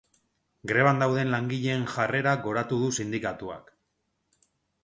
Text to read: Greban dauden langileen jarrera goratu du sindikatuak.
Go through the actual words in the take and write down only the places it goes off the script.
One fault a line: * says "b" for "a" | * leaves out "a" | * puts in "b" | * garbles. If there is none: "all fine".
all fine